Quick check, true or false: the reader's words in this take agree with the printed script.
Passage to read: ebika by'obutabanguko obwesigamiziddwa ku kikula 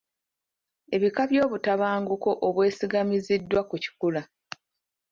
true